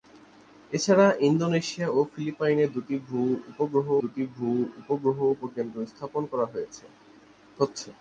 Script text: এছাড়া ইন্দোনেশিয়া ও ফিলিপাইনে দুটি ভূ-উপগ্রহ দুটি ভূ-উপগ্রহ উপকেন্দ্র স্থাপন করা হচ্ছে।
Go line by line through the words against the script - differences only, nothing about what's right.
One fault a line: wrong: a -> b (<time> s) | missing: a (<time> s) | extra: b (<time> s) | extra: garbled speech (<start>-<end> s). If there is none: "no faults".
no faults